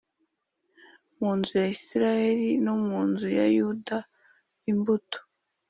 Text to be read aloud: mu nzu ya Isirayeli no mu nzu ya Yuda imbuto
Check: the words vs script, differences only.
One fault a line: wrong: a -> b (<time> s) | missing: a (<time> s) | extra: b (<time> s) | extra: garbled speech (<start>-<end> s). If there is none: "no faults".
no faults